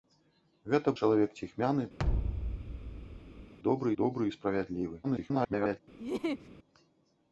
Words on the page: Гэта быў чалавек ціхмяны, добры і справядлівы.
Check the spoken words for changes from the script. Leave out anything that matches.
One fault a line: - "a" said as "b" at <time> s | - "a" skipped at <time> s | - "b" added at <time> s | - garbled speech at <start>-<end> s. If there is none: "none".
- "быў" skipped at 0.9 s
- "добры" added at 4.0 s
- garbled speech at 5.0-5.8 s